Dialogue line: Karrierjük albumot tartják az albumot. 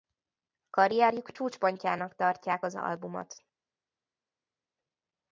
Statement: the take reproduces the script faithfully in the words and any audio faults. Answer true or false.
false